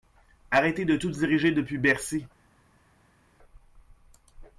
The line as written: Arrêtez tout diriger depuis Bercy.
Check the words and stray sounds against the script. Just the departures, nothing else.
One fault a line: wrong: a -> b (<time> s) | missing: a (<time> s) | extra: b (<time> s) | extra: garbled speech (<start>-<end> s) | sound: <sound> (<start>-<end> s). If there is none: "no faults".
extra: de (0.8 s)